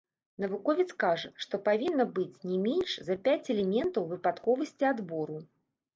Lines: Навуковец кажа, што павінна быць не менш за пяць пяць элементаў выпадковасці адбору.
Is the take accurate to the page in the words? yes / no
no